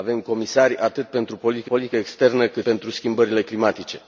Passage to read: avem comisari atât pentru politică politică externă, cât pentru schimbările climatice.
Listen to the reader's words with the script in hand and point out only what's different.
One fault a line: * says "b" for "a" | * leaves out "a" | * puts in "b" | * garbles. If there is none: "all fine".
all fine